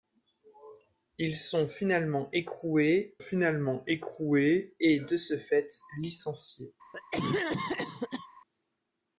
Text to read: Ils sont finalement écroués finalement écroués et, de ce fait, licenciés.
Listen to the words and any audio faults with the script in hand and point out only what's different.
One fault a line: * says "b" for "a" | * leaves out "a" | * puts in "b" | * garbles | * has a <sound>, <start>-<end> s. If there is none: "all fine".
* has a cough, 6.9-8.3 s